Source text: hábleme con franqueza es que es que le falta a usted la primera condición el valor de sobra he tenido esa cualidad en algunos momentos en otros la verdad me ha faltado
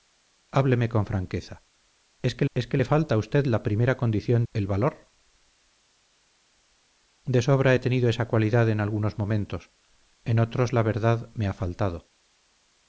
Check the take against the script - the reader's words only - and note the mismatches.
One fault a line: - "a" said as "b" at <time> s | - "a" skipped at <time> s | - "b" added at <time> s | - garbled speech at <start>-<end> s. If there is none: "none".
none